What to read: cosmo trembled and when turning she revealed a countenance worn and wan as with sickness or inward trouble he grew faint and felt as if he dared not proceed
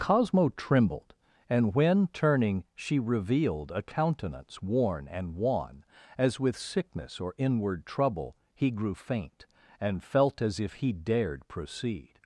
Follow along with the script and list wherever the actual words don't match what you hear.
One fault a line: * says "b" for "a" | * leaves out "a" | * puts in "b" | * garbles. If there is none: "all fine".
* leaves out "not"